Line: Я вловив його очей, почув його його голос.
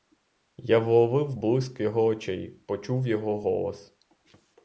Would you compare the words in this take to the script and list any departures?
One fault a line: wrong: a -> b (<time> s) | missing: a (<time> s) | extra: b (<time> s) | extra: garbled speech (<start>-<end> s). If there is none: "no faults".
extra: блиск (1.3 s)
missing: його (3.4 s)